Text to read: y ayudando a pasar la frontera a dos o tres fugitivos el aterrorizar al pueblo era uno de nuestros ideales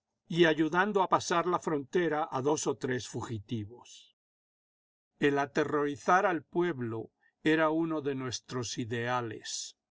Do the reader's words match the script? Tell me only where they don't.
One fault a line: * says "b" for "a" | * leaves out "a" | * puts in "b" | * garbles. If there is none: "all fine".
all fine